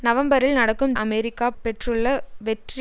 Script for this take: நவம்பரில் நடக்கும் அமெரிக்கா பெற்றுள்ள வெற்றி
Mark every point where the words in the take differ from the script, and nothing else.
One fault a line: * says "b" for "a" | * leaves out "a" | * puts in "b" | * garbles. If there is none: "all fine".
all fine